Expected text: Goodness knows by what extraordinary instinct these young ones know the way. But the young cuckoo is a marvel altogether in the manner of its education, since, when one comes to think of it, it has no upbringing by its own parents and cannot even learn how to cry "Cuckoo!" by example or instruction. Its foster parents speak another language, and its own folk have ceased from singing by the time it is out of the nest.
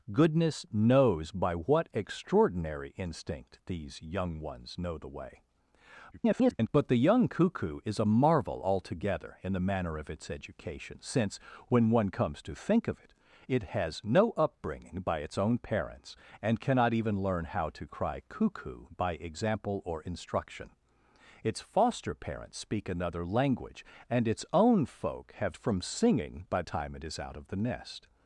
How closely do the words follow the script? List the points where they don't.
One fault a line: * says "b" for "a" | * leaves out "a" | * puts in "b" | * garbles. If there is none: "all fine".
* garbles
* leaves out "ceased"
* leaves out "the"